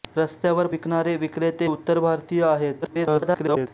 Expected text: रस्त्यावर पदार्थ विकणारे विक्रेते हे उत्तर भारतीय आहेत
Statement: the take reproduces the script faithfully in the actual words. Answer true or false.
false